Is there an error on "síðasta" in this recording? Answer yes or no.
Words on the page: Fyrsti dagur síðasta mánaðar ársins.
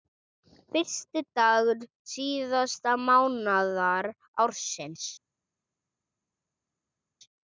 no